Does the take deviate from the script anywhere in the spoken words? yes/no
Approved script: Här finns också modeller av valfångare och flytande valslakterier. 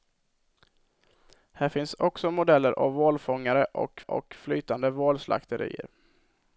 yes